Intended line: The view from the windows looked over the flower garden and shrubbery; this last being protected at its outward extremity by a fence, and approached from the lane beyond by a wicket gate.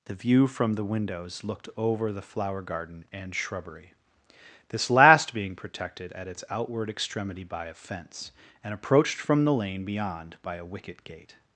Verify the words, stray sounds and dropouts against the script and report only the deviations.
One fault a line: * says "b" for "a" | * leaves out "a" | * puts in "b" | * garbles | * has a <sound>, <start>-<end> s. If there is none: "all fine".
all fine